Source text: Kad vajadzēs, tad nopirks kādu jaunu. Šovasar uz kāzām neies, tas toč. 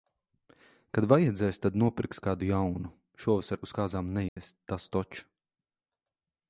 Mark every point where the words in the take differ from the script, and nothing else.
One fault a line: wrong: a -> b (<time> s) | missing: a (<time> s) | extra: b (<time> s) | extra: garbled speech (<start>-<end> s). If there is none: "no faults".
no faults